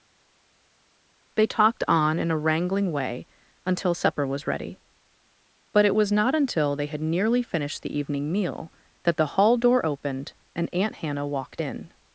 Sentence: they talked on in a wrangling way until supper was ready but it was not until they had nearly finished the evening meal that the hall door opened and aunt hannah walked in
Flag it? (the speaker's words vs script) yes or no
no